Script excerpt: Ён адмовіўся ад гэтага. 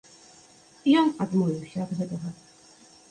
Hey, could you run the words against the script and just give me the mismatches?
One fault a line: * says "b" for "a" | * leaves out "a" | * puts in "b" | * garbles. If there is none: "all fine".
all fine